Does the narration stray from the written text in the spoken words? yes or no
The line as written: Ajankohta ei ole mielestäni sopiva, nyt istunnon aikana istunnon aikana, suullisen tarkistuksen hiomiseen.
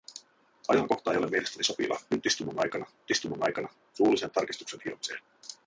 no